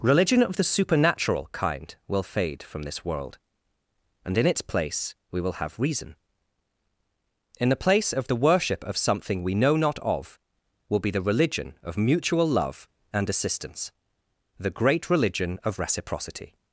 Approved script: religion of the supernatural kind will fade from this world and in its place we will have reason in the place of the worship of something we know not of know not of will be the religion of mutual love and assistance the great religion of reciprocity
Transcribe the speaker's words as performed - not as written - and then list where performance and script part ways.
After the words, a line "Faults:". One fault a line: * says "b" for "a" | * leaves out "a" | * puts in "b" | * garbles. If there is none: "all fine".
religion of the supernatural kind will fade from this world and in its place we will have reason in the place of the worship of something we know not of will be the religion of mutual love and assistance the great religion of reciprocity
Faults:
* leaves out "know not of"